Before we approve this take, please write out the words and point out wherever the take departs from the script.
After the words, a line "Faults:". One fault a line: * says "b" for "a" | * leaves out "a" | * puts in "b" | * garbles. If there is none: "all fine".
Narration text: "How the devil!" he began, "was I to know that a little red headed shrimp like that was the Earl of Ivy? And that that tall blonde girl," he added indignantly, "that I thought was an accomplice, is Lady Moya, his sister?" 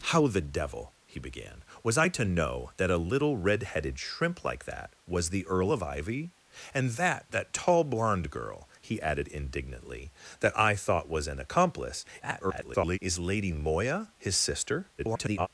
"How the devil!" he began, "was I to know that a little red headed shrimp like that was the Earl of Ivy? And that that tall blonde girl," he added indignantly, "that I thought was an accomplice, [garbled] is Lady Moya, his sister?" [garbled]
Faults:
* garbles
* garbles